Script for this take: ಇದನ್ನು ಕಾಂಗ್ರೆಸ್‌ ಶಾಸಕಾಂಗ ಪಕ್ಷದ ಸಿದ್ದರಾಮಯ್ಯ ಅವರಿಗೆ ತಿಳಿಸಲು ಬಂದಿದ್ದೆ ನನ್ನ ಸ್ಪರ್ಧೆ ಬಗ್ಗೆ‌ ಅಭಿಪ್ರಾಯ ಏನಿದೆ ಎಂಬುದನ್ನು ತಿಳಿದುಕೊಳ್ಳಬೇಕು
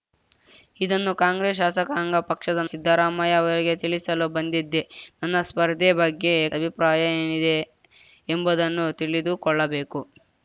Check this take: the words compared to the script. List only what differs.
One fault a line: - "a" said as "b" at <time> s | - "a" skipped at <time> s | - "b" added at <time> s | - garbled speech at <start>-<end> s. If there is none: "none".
none